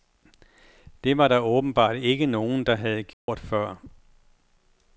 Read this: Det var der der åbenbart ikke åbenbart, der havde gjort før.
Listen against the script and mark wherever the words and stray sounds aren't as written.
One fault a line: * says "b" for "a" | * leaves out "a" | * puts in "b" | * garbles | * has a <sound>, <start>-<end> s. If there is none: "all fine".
* leaves out "der"
* says "nogen" for "åbenbart"
* has a dropout, 3.1-3.3 s